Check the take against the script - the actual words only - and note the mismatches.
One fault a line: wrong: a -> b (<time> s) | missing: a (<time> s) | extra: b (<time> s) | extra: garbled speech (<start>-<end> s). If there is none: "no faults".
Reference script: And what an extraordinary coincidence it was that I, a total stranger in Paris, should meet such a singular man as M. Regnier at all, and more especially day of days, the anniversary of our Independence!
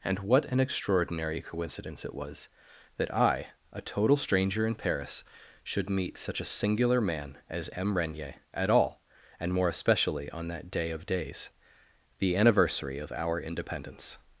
extra: on that (10.3 s)